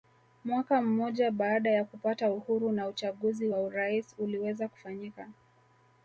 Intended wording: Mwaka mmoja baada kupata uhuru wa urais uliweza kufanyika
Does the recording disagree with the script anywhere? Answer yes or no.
yes